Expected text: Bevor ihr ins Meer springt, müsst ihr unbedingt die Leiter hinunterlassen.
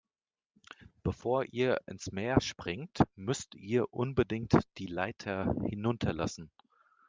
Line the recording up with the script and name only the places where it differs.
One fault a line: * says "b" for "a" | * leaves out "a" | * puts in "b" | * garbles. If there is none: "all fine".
all fine